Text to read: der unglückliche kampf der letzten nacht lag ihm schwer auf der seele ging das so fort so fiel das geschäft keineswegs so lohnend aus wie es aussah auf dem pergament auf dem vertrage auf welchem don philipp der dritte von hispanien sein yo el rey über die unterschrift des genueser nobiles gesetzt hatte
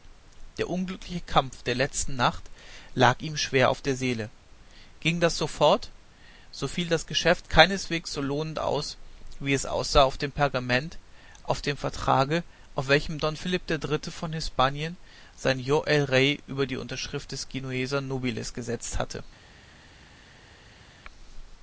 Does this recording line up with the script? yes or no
yes